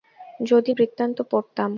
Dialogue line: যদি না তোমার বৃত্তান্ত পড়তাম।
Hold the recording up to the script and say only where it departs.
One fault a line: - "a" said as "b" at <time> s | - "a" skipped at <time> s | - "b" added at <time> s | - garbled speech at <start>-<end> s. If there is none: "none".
- "না তোমার" skipped at 0.7 s